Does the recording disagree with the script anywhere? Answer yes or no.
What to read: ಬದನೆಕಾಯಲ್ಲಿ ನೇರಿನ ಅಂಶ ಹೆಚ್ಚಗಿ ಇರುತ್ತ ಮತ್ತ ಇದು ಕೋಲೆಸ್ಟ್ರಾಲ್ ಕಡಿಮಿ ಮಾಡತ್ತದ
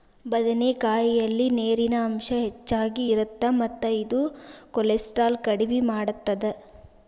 no